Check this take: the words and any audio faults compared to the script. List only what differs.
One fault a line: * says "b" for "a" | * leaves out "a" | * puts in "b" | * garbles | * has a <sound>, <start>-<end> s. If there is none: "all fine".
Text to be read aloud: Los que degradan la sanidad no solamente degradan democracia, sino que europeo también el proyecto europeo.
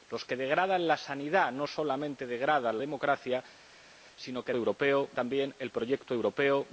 all fine